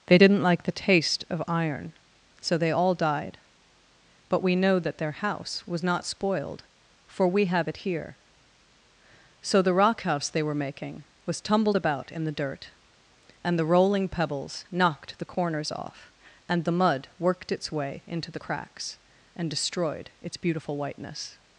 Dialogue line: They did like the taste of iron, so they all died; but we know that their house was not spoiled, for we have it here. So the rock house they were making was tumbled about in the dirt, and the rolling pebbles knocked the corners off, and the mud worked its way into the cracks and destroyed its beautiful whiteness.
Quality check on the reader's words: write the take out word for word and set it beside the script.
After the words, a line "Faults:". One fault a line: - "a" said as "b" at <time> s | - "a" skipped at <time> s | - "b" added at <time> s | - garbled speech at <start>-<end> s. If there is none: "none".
They didn't like the taste of iron, so they all died; but we know that their house was not spoiled, for we have it here. So the rock house they were making was tumbled about in the dirt, and the rolling pebbles knocked the corners off, and the mud worked its way into the cracks and destroyed its beautiful whiteness.
Faults:
- "did" said as "didn't" at 0.2 s